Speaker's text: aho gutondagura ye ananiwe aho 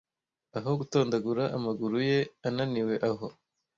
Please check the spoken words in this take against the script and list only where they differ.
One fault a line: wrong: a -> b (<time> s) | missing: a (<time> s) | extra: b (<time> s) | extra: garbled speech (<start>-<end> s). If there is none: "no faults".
extra: amaguru (1.6 s)